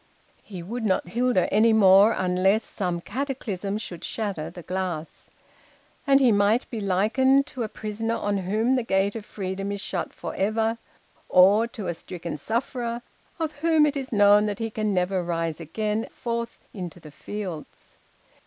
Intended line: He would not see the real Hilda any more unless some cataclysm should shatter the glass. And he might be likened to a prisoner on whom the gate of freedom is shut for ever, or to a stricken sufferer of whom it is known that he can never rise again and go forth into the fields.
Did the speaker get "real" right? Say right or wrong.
wrong